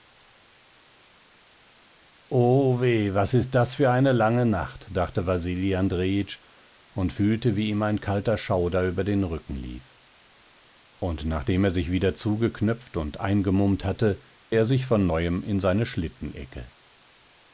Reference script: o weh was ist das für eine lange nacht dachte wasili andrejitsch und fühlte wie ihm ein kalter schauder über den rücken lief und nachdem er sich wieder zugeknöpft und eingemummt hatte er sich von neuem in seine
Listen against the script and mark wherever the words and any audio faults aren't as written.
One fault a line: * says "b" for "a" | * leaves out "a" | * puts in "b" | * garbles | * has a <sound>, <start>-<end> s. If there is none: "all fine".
all fine